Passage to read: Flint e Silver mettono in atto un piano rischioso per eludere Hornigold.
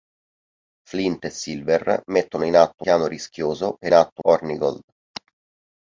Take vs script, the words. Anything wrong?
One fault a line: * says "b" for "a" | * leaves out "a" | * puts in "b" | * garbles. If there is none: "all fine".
* leaves out "un"
* says "atto" for "eludere"